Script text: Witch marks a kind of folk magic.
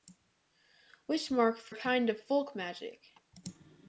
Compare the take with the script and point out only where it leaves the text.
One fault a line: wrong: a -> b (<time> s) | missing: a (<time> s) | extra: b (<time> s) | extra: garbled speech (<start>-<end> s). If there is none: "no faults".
no faults